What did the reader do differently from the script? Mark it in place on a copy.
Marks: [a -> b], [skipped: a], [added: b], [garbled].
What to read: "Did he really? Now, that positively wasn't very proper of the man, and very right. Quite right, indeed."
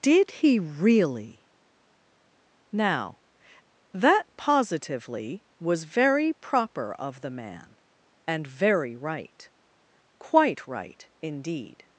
"Did he really? Now, that positively [wasn't -> was] very proper of the man, and very right. Quite right, indeed."